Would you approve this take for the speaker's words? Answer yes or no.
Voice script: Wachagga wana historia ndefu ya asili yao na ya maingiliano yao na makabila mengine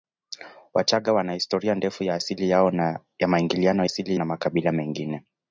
no